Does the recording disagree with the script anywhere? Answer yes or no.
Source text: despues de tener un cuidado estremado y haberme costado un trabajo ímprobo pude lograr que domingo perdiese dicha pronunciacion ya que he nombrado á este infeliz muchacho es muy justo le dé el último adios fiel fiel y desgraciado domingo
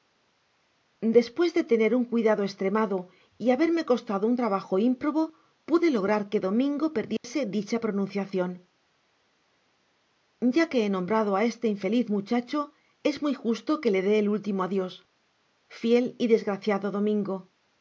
yes